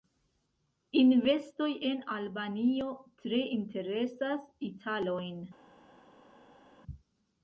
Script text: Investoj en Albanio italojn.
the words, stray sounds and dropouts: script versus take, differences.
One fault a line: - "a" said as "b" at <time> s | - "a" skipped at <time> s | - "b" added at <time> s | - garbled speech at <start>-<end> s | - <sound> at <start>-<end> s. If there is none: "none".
- "tre interesas" added at 3.2 s